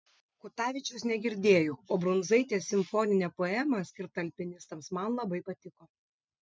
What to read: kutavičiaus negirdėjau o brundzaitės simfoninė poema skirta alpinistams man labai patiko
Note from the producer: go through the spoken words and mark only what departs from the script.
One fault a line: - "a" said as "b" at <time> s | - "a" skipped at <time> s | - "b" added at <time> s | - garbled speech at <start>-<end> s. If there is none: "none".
none